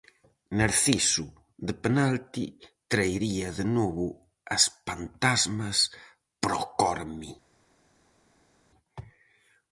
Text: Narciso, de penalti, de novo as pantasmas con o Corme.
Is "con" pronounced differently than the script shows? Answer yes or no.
yes